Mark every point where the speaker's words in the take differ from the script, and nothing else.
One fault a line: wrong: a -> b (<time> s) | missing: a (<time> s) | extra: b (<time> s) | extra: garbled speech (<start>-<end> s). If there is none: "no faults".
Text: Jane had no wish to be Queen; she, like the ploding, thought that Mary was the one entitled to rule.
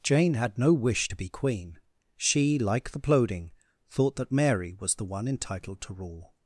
no faults